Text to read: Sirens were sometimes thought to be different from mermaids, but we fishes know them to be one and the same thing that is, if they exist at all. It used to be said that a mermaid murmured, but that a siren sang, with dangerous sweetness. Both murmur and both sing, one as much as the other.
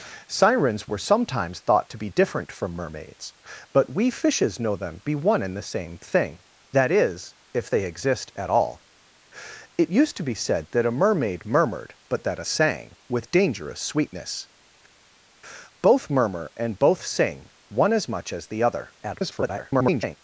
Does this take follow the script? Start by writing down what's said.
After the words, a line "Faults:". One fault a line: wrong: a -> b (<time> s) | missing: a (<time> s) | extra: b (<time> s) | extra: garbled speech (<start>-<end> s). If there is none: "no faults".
Sirens were sometimes thought to be different from mermaids, but we fishes know them be one and the same thing that is, if they exist at all. It used to be said that a mermaid murmured, but that a sang, with dangerous sweetness. Both murmur and both sing, one as much as the other. [garbled]
Faults:
missing: to (5.0 s)
missing: siren (12.5 s)
extra: garbled speech (19.0-20.2 s)